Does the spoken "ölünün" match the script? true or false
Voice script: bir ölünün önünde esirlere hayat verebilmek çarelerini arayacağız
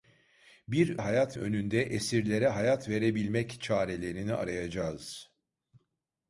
false